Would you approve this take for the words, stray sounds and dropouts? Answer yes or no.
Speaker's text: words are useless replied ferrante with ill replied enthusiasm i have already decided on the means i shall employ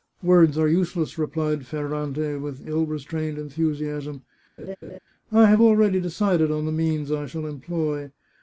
no